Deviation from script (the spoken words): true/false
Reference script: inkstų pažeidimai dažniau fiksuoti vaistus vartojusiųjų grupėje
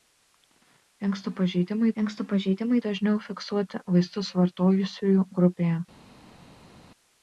true